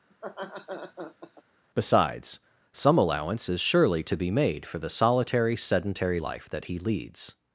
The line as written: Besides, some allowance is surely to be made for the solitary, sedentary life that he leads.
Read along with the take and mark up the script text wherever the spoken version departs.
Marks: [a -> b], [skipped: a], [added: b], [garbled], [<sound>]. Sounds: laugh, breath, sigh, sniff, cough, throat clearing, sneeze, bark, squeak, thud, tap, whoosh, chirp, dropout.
[laugh] Besides, some allowance is surely to be made for the solitary, sedentary life that he leads.